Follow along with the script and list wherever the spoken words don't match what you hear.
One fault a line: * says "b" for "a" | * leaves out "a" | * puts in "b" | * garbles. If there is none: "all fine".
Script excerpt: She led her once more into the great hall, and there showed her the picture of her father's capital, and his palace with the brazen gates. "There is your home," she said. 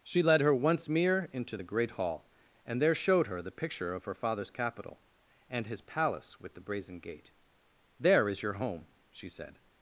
* says "mere" for "more"
* says "gate" for "gates"